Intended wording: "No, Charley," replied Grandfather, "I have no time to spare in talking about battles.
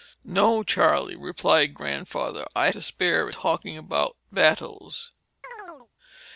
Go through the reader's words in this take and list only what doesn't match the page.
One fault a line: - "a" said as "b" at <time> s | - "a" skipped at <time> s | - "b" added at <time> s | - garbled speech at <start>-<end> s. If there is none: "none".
- "have no time" skipped at 2.7 s
- "in" skipped at 3.3 s